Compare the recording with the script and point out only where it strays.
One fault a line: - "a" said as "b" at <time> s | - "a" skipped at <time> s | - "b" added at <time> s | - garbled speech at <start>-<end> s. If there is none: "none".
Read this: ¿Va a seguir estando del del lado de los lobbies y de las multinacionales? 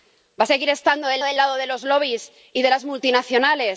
none